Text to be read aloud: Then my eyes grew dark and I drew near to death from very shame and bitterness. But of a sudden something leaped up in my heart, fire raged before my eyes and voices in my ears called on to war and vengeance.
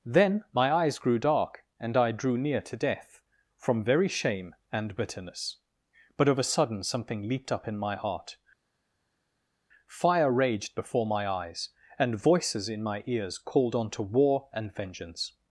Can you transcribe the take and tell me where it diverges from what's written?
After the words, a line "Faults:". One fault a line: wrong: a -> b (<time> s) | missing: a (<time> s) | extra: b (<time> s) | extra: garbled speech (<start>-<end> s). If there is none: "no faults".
Then my eyes grew dark and I drew near to death from very shame and bitterness. But of a sudden something leaped up in my heart, fire raged before my eyes and voices in my ears called on to war and vengeance.
Faults:
no faults